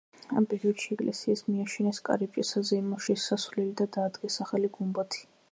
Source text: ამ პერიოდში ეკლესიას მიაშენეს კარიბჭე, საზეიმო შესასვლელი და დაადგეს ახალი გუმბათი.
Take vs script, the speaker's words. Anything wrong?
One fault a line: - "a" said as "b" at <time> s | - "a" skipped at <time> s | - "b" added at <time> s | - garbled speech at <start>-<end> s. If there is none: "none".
none